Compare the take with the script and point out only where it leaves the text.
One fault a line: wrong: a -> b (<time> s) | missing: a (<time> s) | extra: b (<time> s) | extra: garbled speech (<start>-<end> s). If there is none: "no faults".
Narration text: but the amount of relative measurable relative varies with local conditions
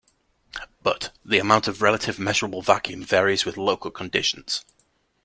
wrong: relative -> vacuum (2.6 s)